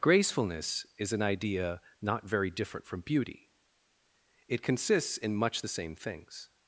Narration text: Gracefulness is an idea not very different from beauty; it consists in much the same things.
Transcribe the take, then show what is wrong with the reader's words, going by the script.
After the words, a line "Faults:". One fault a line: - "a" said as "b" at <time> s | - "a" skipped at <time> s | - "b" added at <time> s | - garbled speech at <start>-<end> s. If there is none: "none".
Gracefulness is an idea not very different from beauty; it consists in much the same things.
Faults:
none